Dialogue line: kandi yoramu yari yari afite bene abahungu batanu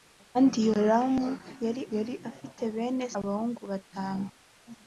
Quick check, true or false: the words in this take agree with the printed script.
true